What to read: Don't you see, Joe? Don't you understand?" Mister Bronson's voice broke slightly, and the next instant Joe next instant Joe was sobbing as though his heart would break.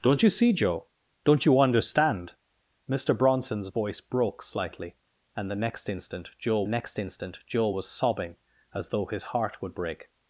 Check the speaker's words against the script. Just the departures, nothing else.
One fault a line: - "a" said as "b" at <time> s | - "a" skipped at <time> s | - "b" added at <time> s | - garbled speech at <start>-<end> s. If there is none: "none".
none